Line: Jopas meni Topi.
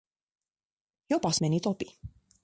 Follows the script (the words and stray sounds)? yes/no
yes